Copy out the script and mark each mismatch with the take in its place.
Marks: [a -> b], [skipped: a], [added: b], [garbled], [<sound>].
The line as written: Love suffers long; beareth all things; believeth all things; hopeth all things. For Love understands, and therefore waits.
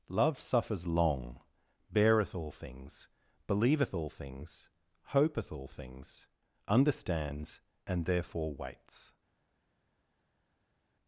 Love suffers long; beareth all things; believeth all things; hopeth all things. [skipped: For Love] understands, and therefore waits.